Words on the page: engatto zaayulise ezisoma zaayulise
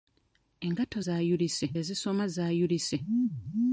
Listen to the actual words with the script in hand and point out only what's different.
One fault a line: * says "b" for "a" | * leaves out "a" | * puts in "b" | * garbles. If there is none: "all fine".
all fine